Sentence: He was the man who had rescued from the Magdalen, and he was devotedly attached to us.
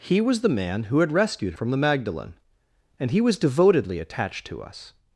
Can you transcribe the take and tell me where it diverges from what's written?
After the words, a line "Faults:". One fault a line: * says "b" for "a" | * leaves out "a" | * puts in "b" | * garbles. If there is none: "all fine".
He was the man who had rescued from the Magdalen, and he was devotedly attached to us.
Faults:
all fine